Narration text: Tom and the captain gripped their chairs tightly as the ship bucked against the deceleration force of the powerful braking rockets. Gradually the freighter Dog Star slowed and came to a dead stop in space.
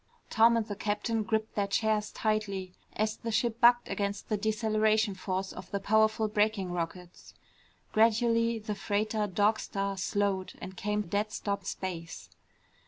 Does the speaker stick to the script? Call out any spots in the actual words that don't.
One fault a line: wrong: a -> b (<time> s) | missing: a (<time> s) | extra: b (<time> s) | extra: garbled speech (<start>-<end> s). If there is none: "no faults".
missing: to (11.0 s)
missing: in (11.6 s)